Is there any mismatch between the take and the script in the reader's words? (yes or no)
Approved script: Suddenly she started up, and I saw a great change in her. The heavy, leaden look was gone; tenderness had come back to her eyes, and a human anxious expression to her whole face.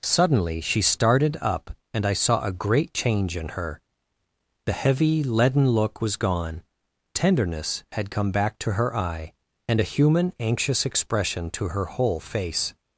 yes